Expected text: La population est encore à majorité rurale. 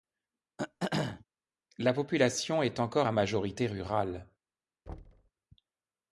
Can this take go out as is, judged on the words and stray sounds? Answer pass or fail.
fail